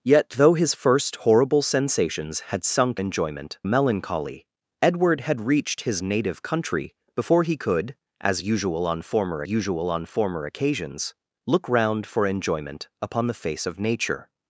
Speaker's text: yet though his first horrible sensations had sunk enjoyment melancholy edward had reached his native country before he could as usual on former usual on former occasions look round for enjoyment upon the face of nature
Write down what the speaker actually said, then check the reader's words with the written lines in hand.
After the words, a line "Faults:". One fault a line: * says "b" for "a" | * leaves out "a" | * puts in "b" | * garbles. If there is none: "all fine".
yet though his first horrible sensations had sunk enjoyment melancholy edward had reached his native country before he could as usual on former usual on former occasions look round for enjoyment upon the face of nature
Faults:
all fine